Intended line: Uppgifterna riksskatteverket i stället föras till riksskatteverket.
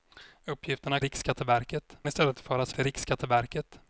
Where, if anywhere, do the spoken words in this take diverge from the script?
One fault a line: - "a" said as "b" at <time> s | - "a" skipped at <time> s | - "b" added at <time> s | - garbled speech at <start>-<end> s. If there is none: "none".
none